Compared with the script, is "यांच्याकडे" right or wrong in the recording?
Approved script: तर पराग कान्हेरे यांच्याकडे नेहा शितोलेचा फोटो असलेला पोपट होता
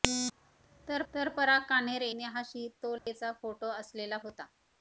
wrong